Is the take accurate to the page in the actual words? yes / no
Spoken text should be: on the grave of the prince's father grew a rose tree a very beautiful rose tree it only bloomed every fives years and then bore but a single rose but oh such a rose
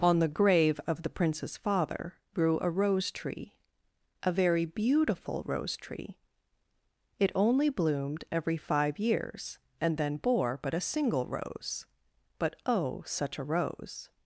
no